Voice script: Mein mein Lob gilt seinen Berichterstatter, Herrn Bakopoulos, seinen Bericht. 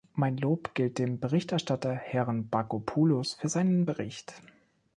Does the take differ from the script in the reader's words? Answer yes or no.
yes